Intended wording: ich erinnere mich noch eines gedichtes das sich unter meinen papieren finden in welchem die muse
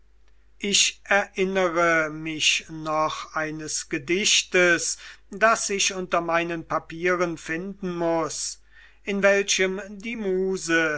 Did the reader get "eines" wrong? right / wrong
right